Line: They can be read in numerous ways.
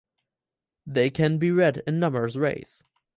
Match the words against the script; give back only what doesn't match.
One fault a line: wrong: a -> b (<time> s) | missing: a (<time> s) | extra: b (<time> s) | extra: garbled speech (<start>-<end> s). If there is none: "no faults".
no faults